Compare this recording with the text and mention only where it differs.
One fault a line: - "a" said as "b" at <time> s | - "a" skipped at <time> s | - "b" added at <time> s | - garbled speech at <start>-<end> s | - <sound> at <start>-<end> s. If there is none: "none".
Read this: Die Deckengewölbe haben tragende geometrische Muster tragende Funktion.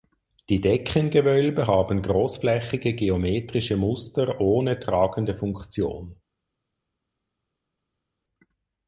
- "tragende" said as "großflächige" at 2.0 s
- "ohne" added at 4.4 s